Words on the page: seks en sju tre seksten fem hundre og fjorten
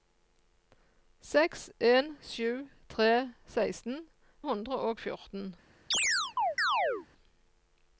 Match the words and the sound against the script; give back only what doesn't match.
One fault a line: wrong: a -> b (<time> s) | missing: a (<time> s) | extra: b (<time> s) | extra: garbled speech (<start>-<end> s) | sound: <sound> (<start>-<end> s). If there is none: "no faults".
missing: fem (4.0 s)
sound: chirp (5.9-7.1 s)